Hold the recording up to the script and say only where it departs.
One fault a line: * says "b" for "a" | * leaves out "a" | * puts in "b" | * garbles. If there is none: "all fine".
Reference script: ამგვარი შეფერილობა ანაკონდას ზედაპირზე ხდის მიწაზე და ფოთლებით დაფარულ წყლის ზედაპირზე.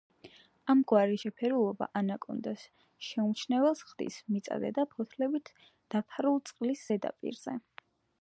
* says "შეუმჩნეველს" for "ზედაპირზე"